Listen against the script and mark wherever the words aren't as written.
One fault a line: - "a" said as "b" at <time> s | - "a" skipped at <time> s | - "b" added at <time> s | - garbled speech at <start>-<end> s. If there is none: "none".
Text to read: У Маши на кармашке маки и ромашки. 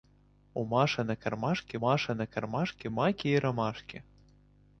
- "Маши на кармашке" added at 1.8 s